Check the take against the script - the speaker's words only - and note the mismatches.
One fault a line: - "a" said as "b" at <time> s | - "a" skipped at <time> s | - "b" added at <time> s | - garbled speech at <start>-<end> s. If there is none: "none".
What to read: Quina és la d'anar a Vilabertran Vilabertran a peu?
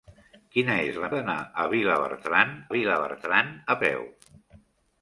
none